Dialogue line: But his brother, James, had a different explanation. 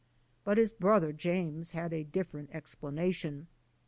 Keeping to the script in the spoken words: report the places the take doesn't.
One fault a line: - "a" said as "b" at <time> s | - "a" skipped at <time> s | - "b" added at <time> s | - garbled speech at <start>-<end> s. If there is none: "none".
none